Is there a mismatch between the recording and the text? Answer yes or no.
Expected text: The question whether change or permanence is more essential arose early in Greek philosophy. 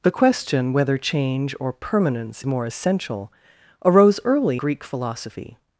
yes